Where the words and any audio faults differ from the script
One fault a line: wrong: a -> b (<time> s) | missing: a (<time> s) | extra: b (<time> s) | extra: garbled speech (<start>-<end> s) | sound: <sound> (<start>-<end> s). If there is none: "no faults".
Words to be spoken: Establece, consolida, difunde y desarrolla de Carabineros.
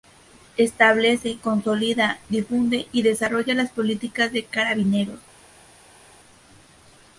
extra: las políticas (3.5 s)